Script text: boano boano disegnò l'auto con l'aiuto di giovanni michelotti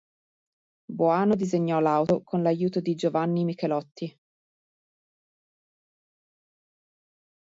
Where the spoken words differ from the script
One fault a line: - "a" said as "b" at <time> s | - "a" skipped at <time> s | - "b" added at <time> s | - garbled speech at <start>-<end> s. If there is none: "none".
- "boano" skipped at 1.4 s